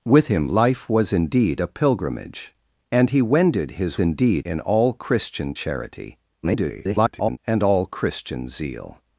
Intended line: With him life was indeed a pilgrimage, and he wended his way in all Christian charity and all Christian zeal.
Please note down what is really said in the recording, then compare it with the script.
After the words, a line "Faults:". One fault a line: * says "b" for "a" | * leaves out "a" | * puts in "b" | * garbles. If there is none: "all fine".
With him life was indeed a pilgrimage, and he wended his indeed in all Christian charity [garbled] and all Christian zeal.
Faults:
* says "indeed" for "way"
* garbles